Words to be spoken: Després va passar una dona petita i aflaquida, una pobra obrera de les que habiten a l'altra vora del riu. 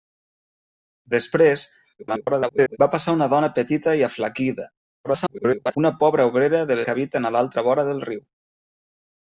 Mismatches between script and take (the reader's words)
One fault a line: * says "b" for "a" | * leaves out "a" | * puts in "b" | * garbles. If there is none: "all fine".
* garbles
* garbles
* leaves out "les"